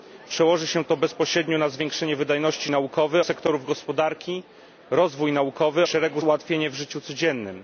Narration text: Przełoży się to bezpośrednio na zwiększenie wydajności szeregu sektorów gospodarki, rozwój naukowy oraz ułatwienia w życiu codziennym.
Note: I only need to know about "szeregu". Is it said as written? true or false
false